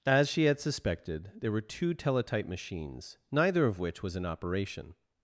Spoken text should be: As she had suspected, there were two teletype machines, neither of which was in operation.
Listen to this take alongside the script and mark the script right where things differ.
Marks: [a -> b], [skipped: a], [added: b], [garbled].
As she had suspected, there were two teletype machines, neither of which was in operation.